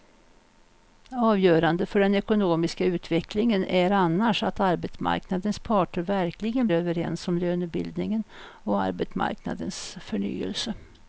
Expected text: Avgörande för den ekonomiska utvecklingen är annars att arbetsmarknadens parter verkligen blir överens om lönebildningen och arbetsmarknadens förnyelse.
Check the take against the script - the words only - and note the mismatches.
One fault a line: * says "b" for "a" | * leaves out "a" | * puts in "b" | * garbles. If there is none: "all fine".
* leaves out "blir"